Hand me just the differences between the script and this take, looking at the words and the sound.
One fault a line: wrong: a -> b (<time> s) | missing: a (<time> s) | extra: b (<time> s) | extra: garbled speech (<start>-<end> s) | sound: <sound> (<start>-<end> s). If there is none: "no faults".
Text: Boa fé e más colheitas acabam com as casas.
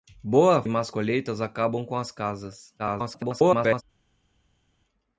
missing: fé (0.6 s)
extra: garbled speech (2.8-3.8 s)